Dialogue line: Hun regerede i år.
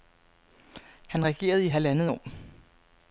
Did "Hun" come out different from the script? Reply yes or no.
yes